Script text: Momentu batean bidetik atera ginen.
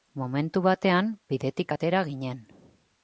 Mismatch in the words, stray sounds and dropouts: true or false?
false